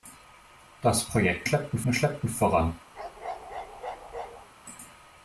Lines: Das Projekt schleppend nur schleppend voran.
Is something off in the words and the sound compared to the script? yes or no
yes